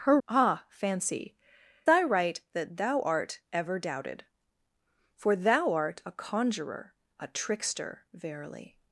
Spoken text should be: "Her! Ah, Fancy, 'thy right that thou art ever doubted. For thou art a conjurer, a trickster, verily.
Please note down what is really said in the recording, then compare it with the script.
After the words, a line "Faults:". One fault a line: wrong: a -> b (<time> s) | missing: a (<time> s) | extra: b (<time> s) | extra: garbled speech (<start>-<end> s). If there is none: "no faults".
"Her! Ah, Fancy, 'thy right that thou art ever doubted. For thou art a conjurer, a trickster, verily.
Faults:
no faults